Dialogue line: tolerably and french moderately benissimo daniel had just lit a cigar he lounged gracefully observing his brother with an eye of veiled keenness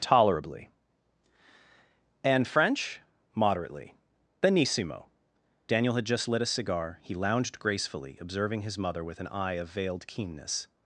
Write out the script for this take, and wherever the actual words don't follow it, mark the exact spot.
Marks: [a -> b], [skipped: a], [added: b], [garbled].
tolerably and french moderately benissimo daniel had just lit a cigar he lounged gracefully observing his [brother -> mother] with an eye of veiled keenness